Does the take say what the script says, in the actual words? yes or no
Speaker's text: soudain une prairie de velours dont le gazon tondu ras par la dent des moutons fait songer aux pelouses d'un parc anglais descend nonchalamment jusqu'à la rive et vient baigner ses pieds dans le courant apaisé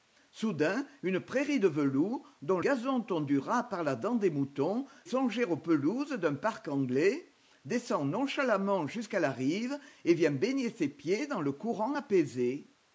no